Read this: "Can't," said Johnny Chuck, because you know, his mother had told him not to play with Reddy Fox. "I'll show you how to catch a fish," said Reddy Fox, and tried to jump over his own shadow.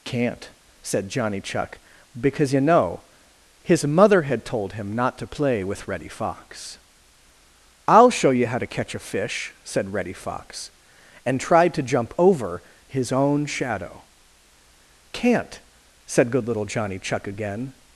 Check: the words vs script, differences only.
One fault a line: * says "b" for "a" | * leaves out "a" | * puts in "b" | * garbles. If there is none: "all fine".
* puts in "Can't said good little Johnny Chuck again"